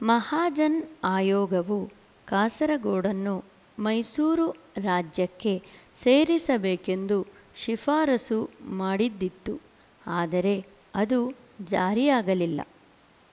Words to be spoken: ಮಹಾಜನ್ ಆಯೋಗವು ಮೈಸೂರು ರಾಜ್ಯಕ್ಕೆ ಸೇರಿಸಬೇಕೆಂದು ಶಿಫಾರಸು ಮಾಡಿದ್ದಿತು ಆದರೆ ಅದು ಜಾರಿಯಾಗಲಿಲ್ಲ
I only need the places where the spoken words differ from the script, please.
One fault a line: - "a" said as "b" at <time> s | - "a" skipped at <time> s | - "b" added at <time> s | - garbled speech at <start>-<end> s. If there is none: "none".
- "ಕಾಸರಗೋಡನ್ನು" added at 2.3 s